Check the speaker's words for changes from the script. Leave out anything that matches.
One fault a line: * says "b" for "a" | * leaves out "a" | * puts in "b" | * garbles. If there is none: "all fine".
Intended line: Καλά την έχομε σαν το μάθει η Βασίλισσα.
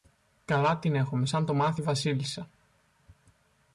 all fine